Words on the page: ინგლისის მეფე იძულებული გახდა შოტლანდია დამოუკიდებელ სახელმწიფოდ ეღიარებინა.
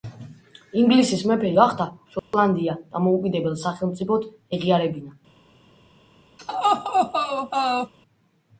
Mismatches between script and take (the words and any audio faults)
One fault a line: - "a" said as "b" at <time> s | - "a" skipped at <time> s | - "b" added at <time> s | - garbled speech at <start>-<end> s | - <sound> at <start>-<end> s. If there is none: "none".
- "იძულებული" skipped at 1.5 s
- dropout at 2.2-2.3 s
- laugh at 6.4-7.9 s